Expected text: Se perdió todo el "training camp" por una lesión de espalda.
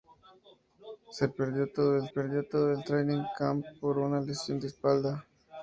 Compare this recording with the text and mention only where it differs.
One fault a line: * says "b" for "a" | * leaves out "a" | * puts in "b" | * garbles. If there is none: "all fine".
* puts in "perdió todo el"